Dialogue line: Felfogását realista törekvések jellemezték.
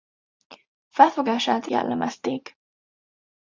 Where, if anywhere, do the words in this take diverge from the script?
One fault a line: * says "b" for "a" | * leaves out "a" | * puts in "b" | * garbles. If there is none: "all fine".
* leaves out "realista törekvések"